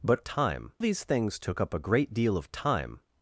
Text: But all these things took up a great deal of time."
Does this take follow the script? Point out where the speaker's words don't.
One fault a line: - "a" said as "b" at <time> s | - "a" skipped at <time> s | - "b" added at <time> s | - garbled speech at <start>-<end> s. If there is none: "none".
- "all" said as "time" at 0.2 s